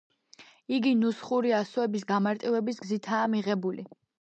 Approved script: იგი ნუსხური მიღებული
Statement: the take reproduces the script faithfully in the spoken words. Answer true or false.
false